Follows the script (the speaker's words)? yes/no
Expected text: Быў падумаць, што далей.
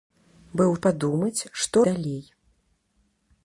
yes